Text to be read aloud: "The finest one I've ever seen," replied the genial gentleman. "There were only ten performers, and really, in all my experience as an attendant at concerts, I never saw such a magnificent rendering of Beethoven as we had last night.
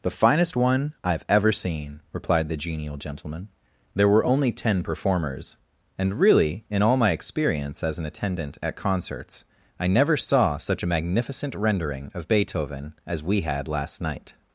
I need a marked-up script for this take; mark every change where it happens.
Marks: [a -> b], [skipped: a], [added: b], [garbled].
"The finest one I've ever seen," replied the genial gentleman. "There were only ten performers, and really, in all my experience as an attendant at concerts, I never saw such a magnificent rendering of Beethoven as we had last night.